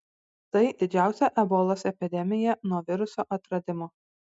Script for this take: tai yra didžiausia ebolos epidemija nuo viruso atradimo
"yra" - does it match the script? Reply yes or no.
no